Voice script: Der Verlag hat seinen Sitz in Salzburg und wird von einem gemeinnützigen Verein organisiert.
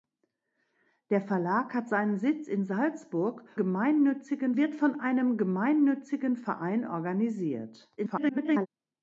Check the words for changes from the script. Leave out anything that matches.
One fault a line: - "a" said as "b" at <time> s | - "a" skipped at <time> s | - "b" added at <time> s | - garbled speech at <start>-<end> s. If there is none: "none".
- "und" said as "gemeinnützigen" at 3.6 s
- garbled speech at 8.0-8.7 s